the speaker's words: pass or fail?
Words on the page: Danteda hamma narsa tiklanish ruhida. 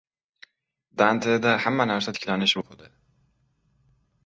pass